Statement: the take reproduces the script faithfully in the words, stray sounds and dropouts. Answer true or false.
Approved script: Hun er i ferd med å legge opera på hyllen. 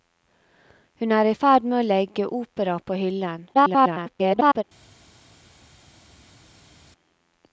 false